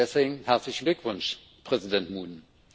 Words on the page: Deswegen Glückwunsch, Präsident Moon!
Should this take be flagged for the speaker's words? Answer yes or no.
yes